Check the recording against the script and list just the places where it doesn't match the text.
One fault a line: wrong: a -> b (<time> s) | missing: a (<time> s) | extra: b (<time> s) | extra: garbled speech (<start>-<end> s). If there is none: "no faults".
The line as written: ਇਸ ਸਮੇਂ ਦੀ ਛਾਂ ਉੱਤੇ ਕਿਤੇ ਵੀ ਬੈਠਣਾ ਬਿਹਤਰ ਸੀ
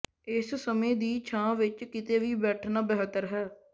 wrong: ਉੱਤੇ -> ਵਿੱਚ (1.6 s)
wrong: ਸੀ -> ਹੈ (3.3 s)